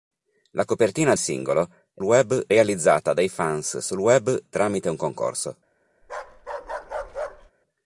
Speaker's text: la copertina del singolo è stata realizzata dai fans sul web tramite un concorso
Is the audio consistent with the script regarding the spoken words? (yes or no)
no